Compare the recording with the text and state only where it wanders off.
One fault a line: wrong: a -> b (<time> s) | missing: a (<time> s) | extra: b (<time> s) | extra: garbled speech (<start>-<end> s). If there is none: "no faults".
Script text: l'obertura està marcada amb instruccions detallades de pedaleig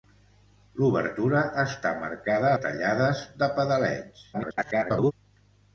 missing: amb instruccions (2.5 s)
extra: garbled speech (4.3-5.1 s)